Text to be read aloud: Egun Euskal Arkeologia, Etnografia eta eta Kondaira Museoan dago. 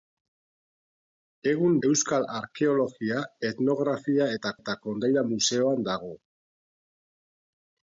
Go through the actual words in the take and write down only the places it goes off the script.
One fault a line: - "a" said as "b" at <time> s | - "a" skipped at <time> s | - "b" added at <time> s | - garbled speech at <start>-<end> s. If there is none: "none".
none